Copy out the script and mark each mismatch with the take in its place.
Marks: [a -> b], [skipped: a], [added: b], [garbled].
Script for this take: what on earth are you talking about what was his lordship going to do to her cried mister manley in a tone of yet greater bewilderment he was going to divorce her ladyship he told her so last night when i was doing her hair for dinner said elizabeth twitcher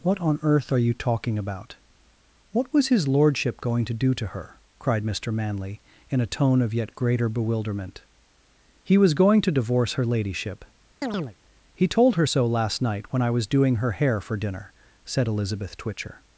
what on earth are you talking about what was his lordship going to do to her cried mister manley in a tone of yet greater bewilderment he was going to divorce her ladyship he told her so last night when i was doing her hair for dinner said elizabeth twitcher